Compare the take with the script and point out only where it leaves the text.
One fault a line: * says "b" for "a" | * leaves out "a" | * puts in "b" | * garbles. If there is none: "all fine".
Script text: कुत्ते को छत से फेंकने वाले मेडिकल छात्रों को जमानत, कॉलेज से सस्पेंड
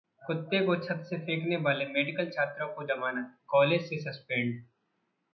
all fine